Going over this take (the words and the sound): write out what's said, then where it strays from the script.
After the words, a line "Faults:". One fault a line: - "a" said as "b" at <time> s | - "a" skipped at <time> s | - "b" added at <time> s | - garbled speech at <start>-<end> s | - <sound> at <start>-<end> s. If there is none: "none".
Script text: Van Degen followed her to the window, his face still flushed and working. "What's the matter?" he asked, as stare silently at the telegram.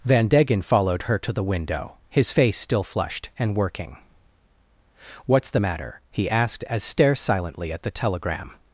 Van Degen followed her to the window, his face still flushed and working. "What's the matter?" he asked, as stare silently at the telegram.
Faults:
none